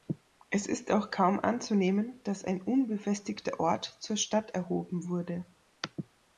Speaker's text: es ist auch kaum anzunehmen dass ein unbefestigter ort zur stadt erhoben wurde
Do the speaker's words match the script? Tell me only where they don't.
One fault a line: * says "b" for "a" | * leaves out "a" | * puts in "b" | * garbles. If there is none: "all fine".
all fine